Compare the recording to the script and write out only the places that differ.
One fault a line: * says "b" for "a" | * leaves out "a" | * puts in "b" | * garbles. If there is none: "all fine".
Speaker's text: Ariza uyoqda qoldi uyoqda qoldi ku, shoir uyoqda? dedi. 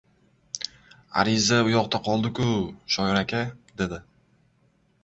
* leaves out "uyoqda qoldi"
* says "aka" for "uyoqda"